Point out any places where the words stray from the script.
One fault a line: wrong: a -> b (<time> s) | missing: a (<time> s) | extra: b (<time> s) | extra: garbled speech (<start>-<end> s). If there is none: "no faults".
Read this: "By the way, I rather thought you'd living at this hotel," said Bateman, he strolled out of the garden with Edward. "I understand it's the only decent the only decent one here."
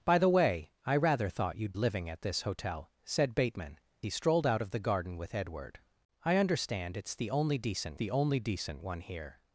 no faults